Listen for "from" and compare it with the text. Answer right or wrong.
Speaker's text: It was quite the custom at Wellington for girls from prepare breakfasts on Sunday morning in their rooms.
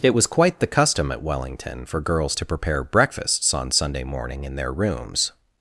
wrong